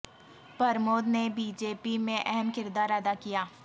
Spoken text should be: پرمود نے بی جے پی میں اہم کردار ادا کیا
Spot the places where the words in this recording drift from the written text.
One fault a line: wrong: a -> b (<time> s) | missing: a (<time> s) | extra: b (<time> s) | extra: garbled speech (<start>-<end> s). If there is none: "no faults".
no faults